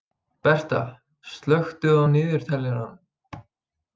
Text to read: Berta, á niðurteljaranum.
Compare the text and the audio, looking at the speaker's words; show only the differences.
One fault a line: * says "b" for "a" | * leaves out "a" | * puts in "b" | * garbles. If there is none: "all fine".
* puts in "slökktu"